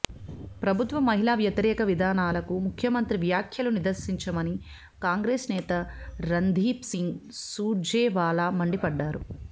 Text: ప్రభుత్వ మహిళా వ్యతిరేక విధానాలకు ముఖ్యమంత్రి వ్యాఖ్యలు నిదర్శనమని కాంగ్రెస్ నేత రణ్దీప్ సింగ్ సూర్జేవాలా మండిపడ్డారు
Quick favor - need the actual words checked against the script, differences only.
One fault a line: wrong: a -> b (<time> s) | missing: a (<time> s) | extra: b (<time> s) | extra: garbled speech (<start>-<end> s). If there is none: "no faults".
no faults